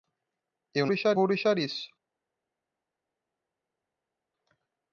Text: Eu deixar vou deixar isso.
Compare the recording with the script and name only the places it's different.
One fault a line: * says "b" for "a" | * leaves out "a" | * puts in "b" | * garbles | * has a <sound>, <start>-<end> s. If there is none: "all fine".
all fine